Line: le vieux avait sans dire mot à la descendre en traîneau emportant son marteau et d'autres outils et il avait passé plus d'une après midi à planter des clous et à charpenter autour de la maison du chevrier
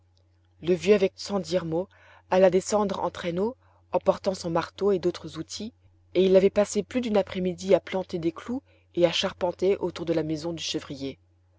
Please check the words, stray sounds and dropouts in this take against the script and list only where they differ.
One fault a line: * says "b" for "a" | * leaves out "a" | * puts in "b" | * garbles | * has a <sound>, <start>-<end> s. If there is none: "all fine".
all fine